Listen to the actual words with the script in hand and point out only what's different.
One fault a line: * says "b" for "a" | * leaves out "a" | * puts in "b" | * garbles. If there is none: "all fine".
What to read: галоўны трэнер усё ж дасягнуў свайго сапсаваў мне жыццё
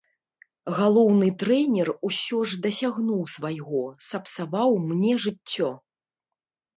all fine